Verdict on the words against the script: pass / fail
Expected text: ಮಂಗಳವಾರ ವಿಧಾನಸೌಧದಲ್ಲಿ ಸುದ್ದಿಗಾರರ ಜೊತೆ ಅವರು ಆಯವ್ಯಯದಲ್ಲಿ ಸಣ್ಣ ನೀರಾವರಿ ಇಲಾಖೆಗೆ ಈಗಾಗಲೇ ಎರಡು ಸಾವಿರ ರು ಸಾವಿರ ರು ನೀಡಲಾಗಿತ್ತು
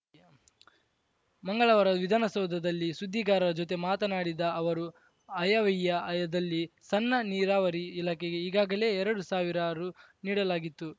fail